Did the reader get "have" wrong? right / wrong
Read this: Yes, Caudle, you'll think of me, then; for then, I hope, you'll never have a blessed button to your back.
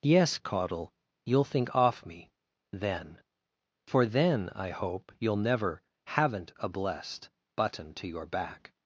wrong